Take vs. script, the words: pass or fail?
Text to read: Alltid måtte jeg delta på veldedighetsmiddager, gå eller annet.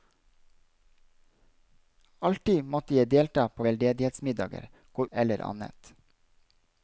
pass